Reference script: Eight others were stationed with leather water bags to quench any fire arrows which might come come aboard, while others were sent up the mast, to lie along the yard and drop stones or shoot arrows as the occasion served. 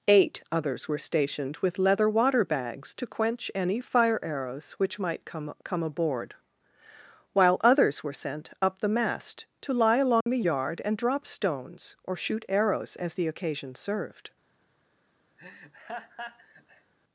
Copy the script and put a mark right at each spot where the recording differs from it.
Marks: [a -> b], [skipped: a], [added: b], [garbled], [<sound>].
Eight others were stationed with leather water bags to quench any fire arrows which might come come aboard, while others were sent up the mast, to lie along [dropout] the yard and drop stones or shoot arrows as the occasion served. [laugh]